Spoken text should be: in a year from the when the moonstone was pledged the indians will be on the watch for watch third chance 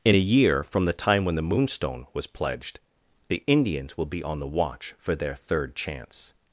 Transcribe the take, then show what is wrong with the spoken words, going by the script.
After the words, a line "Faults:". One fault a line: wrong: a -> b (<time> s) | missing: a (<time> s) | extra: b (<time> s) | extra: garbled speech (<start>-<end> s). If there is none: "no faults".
in a year from the time when the moonstone was pledged the indians will be on the watch for their third chance
Faults:
extra: time (0.9 s)
wrong: watch -> their (5.1 s)